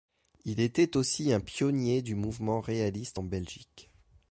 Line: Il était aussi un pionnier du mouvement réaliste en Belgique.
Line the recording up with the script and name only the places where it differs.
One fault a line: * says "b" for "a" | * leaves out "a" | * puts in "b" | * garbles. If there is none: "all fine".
all fine